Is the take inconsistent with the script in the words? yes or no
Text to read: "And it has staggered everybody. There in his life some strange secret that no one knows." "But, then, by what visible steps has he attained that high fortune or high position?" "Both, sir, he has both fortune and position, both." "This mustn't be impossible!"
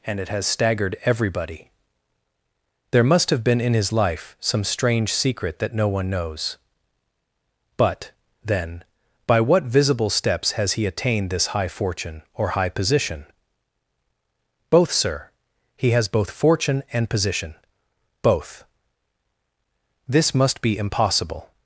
yes